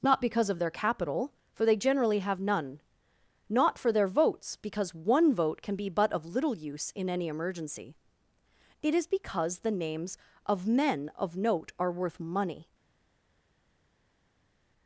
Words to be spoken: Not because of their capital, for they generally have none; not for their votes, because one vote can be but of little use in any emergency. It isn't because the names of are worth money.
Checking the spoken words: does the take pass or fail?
fail